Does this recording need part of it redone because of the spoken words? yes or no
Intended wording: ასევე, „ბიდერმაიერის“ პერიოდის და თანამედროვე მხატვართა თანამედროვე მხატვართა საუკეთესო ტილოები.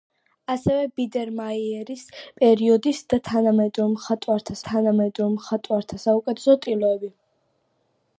no